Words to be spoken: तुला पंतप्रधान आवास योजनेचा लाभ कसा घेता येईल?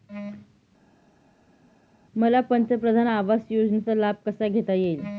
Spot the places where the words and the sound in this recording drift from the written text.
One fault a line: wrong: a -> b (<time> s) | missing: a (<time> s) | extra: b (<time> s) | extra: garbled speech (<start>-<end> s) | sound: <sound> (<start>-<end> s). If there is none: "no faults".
wrong: तुला -> मला (2.2 s)